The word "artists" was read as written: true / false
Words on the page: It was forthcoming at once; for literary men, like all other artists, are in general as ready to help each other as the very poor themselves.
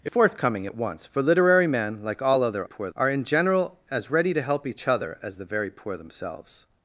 false